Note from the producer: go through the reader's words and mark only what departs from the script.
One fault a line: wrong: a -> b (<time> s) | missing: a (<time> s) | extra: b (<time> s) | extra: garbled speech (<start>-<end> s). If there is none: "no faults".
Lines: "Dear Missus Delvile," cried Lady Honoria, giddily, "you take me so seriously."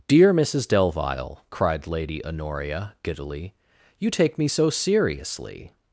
no faults